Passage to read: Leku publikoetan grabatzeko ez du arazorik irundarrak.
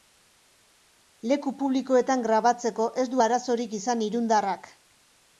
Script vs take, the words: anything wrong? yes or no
yes